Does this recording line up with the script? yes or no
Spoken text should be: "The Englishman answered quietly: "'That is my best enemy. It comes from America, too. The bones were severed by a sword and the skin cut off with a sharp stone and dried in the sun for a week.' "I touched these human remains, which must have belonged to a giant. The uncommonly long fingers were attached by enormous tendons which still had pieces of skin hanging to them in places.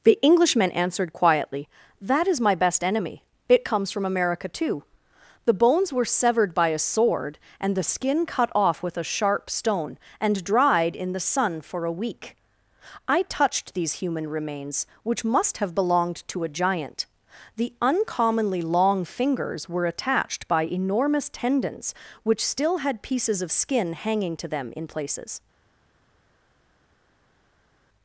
yes